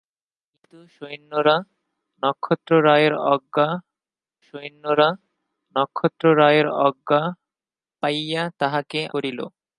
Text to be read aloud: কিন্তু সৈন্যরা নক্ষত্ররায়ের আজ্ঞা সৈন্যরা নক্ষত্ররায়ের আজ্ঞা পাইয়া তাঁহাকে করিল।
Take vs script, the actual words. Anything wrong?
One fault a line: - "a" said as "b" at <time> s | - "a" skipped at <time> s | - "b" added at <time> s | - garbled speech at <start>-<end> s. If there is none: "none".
none